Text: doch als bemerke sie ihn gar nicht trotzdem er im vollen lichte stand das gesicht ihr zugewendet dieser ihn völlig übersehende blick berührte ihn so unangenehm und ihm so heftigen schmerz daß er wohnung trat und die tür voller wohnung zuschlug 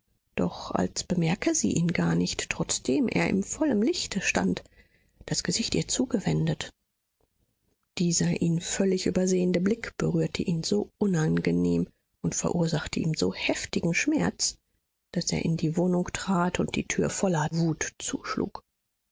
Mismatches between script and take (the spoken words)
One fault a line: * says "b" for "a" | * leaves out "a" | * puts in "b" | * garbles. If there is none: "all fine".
* puts in "verursachte"
* puts in "in die"
* says "wut" for "wohnung"